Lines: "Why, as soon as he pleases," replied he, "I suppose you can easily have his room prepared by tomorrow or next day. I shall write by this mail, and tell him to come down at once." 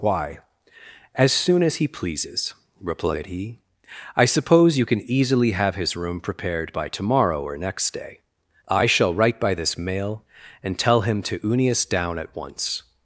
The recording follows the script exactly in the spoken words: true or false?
false